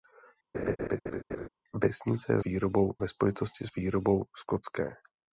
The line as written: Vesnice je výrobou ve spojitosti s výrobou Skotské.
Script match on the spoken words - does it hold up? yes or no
yes